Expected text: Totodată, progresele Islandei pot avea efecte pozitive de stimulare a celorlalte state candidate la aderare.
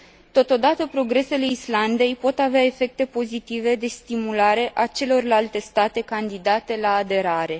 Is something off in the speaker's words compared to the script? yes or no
no